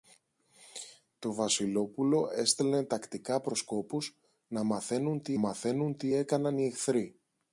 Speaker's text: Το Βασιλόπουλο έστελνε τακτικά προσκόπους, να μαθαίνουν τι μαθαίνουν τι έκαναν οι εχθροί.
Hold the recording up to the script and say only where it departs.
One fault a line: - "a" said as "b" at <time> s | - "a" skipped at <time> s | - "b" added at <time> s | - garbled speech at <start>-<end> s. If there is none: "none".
none